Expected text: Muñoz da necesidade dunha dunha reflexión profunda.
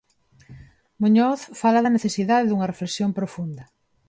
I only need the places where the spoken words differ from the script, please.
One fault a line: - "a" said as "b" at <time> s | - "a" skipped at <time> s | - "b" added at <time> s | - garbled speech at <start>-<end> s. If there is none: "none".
- "fala" added at 1.6 s
- "dunha" skipped at 2.7 s